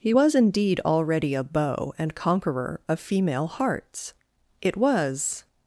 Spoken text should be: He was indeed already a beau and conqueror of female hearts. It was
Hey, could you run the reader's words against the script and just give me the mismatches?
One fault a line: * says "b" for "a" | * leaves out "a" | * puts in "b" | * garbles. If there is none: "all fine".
all fine